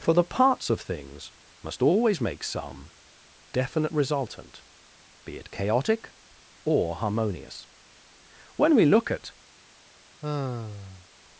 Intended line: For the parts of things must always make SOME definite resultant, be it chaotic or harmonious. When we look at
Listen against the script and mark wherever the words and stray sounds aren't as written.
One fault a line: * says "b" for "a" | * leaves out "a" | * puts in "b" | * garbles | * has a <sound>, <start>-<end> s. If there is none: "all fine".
* has a sigh, 10.2-11.1 s